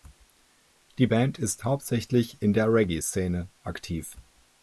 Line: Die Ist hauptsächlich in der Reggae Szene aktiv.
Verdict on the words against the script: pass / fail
fail